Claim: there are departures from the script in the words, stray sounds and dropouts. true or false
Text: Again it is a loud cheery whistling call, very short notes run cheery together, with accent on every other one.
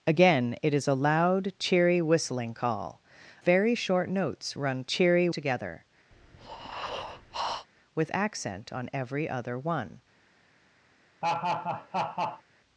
true